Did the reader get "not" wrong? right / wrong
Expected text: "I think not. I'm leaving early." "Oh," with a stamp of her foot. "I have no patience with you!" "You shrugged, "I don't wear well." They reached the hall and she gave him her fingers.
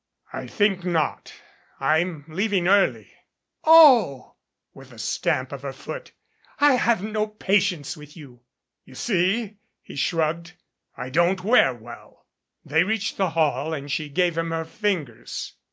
right